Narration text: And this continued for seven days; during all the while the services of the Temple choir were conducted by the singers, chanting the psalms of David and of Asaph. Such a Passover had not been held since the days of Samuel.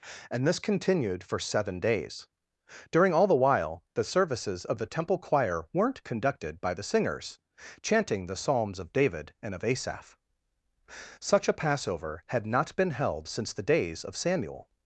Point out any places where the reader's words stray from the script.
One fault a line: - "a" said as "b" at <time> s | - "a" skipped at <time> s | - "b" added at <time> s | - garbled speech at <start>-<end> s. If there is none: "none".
- "were" said as "weren't" at 5.7 s